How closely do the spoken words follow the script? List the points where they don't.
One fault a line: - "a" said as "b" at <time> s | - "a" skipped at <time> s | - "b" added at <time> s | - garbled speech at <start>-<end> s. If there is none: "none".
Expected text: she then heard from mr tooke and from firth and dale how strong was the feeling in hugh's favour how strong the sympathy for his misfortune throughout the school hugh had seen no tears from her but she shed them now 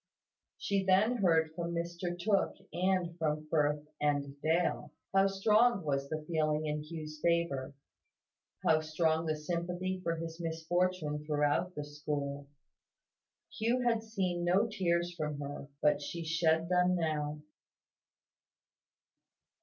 none